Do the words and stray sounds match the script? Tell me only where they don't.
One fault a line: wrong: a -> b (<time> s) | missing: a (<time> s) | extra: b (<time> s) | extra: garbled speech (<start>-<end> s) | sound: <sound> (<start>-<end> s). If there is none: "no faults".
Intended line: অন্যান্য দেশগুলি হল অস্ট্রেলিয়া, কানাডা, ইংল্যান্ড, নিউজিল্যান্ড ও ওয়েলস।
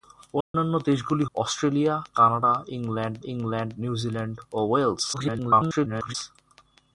sound: dropout (0.4-0.5 s)
missing: হল (1.2 s)
extra: ইংল্যান্ড (3.2 s)
extra: garbled speech (5.1-6.2 s)